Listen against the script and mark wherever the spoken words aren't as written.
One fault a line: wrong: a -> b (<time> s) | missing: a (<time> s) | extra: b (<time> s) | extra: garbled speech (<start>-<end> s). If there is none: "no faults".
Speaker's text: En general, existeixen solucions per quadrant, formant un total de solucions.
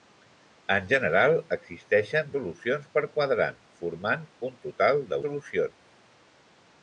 no faults